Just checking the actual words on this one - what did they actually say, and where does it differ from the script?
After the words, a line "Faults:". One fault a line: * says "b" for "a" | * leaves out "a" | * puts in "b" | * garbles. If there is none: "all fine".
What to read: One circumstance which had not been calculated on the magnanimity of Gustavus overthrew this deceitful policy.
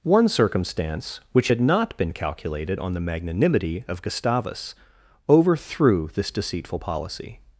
One circumstance which had not been calculated on the magnanimity of Gustavus overthrew this deceitful policy.
Faults:
all fine